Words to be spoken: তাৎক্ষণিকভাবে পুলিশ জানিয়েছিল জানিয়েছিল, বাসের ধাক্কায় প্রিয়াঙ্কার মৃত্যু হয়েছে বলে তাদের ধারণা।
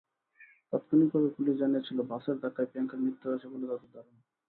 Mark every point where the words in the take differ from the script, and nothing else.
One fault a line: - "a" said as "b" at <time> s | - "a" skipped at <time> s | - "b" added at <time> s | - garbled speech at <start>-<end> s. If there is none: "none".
- "জানিয়েছিল" skipped at 2.0 s